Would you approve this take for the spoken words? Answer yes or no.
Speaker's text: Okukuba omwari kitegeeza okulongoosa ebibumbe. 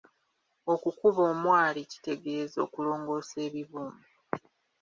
yes